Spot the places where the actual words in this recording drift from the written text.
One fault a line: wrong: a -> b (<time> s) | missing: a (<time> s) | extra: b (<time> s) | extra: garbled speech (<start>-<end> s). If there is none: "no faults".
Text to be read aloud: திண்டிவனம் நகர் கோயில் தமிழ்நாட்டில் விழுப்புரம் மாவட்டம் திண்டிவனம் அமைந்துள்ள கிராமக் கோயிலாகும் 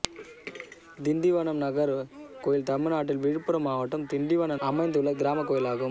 no faults